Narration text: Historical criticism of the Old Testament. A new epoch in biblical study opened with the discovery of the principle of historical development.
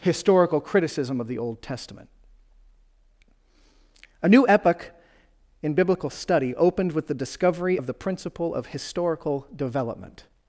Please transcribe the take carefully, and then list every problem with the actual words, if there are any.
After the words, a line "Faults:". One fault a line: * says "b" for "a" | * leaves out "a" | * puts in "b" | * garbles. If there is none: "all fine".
Historical criticism of the Old Testament. A new epoch in biblical study opened with the discovery of the principle of historical development.
Faults:
all fine